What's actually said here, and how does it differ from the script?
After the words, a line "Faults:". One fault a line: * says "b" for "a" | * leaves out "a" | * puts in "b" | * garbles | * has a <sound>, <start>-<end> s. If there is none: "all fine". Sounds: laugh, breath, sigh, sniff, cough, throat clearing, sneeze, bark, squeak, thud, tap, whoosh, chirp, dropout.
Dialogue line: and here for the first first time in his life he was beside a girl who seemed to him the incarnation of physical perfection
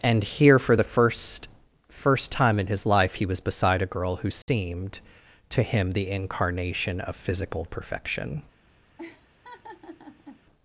and here for the first first time in his life he was beside a girl who seemed to him the incarnation of physical perfection
Faults:
* has a dropout, 4.4-4.5 s
* has a laugh, 9.0-10.4 s